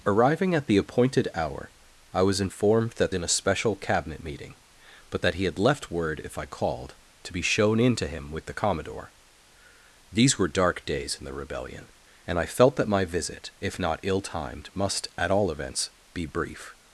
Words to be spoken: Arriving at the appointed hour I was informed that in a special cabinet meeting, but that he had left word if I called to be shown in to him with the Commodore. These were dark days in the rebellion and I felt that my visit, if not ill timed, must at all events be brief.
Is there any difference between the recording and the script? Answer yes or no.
no